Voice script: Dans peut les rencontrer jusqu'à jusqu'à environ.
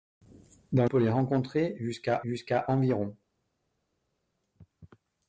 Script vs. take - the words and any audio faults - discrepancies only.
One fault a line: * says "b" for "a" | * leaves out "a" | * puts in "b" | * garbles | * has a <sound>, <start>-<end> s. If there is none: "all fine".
all fine